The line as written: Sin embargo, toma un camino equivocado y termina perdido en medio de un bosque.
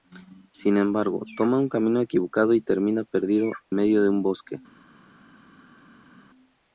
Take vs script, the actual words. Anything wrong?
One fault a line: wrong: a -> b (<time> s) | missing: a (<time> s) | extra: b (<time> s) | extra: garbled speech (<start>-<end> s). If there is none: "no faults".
missing: en (3.5 s)